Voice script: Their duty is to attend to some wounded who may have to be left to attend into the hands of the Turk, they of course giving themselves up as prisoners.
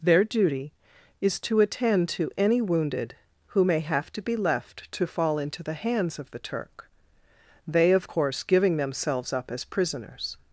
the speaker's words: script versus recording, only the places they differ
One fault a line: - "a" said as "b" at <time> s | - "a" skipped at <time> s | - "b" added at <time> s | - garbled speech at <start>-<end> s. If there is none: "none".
- "some" said as "any" at 2.4 s
- "attend" said as "fall" at 5.0 s